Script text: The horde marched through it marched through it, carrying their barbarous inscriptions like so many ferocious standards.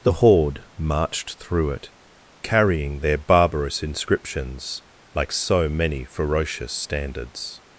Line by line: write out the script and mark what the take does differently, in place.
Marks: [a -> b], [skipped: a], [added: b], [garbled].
The horde marched through it [skipped: marched through it,] carrying their barbarous inscriptions like so many ferocious standards.